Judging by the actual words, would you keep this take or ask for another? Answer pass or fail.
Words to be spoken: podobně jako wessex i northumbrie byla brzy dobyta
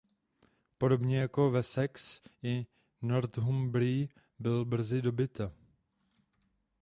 pass